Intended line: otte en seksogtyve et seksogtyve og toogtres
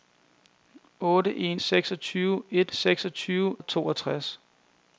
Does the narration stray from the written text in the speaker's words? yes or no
no